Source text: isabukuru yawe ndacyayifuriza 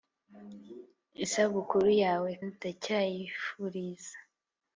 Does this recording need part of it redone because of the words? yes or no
no